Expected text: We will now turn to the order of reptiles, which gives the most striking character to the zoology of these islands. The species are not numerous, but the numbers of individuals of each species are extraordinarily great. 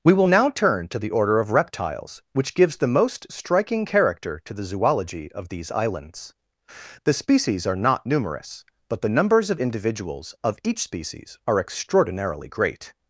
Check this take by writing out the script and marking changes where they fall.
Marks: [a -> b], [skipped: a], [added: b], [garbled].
We will now turn to the order of reptiles, which gives the most striking character to the zoology of these islands. The species are not numerous, but the numbers of individuals of each species are extraordinarily great.